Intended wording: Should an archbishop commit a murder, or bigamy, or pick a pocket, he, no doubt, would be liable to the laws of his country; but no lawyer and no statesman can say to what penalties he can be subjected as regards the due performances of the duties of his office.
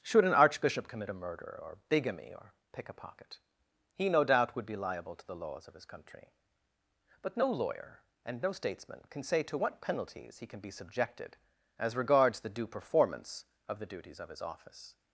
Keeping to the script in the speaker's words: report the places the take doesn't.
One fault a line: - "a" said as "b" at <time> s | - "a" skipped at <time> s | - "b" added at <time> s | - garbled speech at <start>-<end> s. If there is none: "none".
- "performances" said as "performance" at 12.7 s